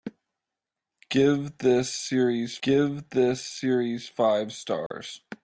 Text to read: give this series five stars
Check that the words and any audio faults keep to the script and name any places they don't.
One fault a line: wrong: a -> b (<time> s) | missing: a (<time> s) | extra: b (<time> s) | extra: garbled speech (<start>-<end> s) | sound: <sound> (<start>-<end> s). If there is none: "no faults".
extra: give this series (2.6 s)
sound: dropout (4.9-4.9 s)